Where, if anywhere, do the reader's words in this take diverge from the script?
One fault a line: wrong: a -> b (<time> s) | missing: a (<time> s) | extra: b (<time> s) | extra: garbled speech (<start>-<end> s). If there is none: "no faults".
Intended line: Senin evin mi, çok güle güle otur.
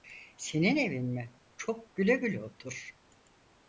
no faults